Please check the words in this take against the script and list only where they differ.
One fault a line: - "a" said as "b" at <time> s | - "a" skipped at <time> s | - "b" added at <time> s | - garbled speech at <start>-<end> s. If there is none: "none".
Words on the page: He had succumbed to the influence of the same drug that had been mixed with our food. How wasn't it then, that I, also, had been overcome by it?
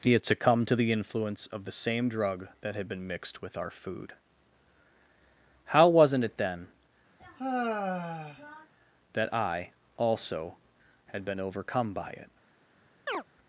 none